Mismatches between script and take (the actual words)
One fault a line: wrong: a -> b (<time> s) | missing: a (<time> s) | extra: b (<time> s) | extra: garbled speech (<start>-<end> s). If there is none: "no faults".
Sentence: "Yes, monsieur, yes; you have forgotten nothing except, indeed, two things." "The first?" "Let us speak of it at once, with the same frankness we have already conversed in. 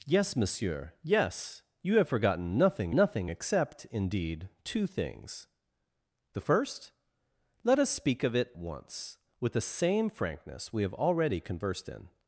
extra: nothing (2.9 s)
missing: at (8.5 s)